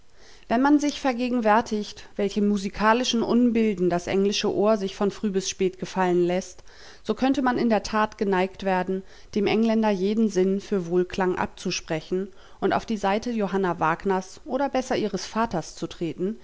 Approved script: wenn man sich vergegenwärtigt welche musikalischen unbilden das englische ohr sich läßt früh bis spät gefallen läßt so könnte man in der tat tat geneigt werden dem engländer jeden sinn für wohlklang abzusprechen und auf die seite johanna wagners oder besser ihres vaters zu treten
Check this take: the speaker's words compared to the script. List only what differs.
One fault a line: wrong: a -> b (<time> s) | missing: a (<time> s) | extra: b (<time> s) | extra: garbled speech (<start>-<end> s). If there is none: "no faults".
wrong: läßt -> von (4.9 s)
missing: tat (8.2 s)